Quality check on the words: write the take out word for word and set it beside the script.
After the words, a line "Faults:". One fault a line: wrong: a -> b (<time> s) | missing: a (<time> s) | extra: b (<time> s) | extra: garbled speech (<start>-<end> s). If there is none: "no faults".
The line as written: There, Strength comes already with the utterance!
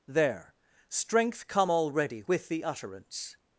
There, Strength come already with the utterance!
Faults:
wrong: comes -> come (1.5 s)